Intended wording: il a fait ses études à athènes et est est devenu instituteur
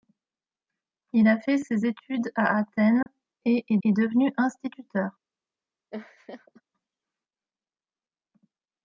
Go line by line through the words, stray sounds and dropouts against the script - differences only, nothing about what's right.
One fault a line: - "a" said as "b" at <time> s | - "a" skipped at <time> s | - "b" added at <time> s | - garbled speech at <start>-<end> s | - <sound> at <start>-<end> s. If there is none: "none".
- dropout at 3.0-3.1 s
- laugh at 5.9-6.6 s